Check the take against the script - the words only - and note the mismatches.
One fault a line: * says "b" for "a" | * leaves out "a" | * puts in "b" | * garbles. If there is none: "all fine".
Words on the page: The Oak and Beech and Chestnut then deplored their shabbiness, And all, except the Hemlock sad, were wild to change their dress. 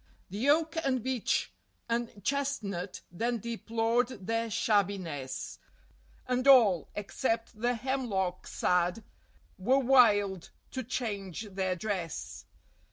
all fine